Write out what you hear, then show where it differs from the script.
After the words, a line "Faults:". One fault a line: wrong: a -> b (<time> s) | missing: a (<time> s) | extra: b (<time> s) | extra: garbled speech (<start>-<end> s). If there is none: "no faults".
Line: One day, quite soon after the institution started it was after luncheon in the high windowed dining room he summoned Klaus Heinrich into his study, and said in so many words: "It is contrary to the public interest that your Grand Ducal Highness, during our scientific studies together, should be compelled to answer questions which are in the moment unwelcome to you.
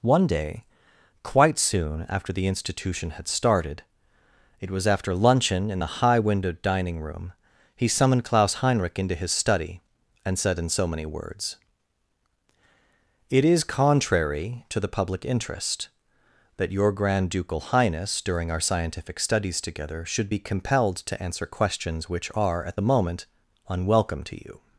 One day, quite soon after the institution had started it was after luncheon in the high windowed dining room he summoned Klaus Heinrich into his study, and said in so many words: "It is contrary to the public interest that your Grand Ducal Highness, during our scientific studies together, should be compelled to answer questions which are at the moment unwelcome to you.
Faults:
extra: had (3.1 s)
wrong: in -> at (22.6 s)